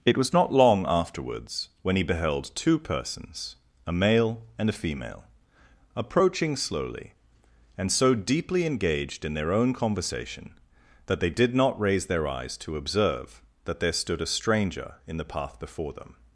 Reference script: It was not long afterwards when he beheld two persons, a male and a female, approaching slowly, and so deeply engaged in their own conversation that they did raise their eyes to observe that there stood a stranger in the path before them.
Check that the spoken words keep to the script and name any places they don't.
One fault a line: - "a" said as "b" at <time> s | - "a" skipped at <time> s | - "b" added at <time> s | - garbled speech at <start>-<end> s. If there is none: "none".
- "not" added at 11.5 s